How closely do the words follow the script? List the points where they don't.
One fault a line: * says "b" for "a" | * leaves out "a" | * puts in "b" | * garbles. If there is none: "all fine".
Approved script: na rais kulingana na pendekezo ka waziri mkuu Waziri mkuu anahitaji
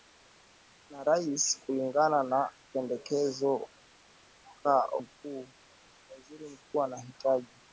* leaves out "waziri"